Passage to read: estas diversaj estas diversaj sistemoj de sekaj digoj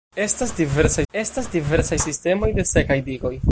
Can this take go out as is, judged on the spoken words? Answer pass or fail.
pass